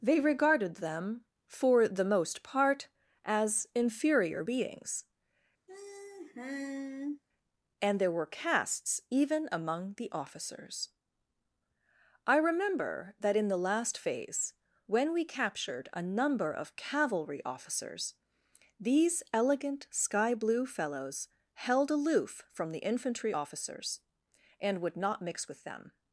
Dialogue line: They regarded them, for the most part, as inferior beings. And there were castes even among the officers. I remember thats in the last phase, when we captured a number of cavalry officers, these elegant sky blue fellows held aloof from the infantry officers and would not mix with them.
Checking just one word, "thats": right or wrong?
wrong